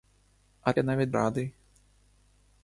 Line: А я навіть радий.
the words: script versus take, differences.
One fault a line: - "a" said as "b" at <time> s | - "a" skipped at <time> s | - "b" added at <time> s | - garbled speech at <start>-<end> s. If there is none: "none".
none